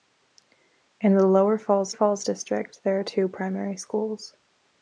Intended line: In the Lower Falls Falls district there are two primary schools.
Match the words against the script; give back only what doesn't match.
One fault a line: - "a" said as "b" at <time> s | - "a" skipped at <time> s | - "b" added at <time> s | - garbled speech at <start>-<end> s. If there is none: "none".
none